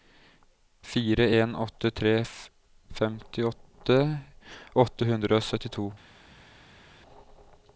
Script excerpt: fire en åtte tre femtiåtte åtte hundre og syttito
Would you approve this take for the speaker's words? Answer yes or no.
yes